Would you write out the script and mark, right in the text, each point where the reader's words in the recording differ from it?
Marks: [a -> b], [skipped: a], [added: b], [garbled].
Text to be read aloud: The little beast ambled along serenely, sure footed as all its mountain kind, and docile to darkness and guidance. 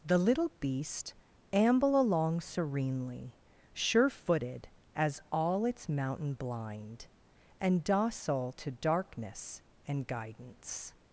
The little beast [ambled -> amble] along serenely, sure footed as all its mountain [kind, -> blind] and docile to darkness and guidance.